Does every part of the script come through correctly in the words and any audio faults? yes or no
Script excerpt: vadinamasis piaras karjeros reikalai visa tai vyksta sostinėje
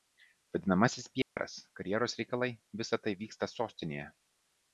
no